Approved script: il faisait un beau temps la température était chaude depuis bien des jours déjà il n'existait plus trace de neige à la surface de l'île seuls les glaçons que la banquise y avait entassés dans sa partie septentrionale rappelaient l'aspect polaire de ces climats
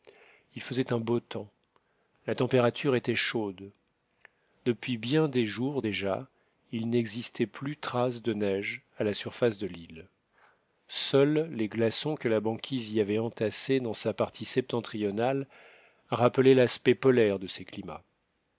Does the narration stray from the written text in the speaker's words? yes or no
no